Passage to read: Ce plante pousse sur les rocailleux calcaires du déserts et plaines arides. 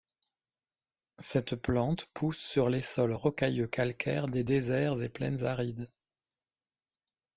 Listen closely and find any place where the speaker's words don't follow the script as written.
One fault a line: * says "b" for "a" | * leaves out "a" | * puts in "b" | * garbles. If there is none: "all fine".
* says "Cette" for "Ce"
* puts in "sols"
* says "des" for "du"